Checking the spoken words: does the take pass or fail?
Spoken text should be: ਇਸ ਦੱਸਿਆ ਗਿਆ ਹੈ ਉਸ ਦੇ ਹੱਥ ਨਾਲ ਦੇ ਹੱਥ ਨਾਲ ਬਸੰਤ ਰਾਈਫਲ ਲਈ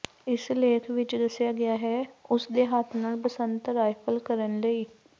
fail